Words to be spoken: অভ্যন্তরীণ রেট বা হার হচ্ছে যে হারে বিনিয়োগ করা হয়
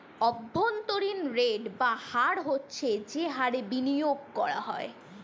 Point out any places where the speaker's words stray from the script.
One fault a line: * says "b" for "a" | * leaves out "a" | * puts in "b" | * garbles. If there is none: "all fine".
all fine